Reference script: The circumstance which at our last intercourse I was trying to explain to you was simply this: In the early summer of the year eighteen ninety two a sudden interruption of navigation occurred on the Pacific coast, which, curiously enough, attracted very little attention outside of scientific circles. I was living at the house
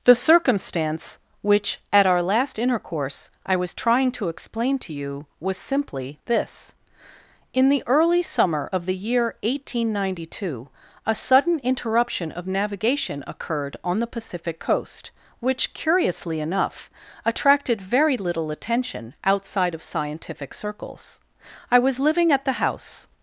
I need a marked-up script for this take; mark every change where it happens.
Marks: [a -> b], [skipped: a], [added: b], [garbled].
The circumstance which at our last intercourse I was trying to explain to you was simply this: In the early summer of the year eighteen ninety two a sudden interruption of navigation occurred on the Pacific coast, which, curiously enough, attracted very little attention outside of scientific circles. I was living at the house